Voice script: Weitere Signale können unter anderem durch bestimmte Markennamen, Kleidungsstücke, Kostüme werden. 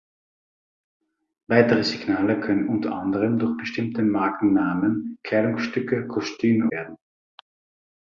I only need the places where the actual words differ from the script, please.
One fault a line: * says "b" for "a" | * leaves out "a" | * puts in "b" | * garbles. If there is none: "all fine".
all fine